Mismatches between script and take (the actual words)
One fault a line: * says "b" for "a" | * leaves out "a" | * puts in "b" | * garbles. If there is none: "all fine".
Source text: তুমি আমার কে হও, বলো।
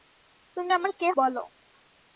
* leaves out "হও"